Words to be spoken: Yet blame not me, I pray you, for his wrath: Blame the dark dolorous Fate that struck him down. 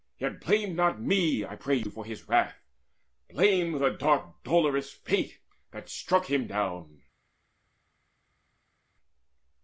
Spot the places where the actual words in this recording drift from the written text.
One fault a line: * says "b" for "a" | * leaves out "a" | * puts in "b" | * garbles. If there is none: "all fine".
all fine